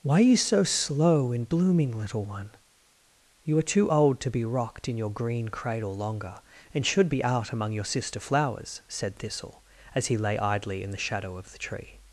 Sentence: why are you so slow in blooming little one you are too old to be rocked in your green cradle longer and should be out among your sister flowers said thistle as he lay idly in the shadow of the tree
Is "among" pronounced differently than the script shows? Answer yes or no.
no